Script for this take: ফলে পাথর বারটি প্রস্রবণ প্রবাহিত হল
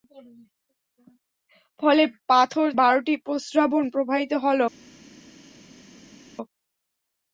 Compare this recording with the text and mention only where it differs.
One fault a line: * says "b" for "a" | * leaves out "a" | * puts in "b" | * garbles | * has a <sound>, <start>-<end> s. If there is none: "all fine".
all fine